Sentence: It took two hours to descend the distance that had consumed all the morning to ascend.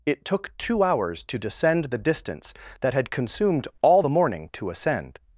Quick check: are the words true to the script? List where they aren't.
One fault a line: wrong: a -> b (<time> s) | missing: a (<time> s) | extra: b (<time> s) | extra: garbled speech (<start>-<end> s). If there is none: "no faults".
no faults